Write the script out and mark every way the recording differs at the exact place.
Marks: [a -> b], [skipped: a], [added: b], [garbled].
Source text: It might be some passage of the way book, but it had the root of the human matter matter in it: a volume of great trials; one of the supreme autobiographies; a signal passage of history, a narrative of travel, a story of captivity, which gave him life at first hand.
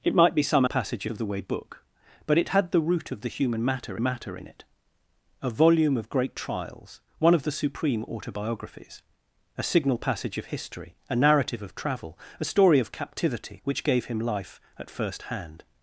It might be some passage of the way book, but it had the root of the human matter matter in it: a volume of great trials; one of the supreme autobiographies; a signal passage of history, a narrative of travel, a story of captivity, which gave him life at first hand.